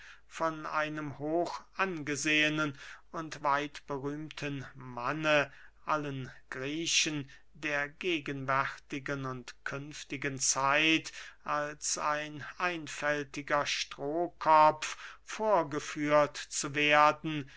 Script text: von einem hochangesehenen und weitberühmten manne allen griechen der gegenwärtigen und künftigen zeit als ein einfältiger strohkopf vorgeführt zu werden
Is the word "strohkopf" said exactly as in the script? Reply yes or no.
yes